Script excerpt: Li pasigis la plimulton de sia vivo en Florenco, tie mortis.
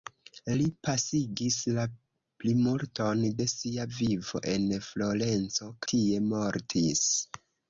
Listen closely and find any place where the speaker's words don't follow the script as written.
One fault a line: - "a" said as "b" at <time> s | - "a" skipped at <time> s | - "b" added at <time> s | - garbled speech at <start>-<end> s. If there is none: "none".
none